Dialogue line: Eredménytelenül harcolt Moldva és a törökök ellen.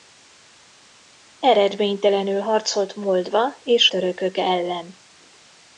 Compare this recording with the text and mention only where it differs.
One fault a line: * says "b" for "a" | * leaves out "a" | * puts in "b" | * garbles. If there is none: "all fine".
* leaves out "a"